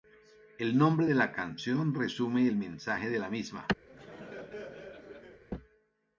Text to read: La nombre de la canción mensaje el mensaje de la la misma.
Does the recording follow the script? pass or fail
fail